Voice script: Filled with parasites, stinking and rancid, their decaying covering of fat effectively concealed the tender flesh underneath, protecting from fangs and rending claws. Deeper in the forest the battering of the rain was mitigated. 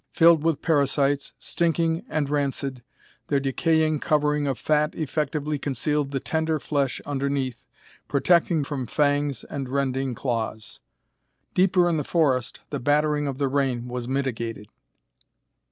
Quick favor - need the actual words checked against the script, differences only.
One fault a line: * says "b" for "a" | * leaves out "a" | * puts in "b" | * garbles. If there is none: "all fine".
all fine